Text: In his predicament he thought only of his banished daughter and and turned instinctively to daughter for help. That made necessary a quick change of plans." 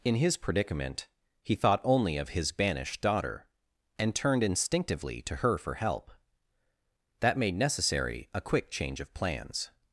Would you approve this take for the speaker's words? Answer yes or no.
no